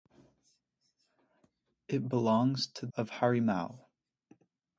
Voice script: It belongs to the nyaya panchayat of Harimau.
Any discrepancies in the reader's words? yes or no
yes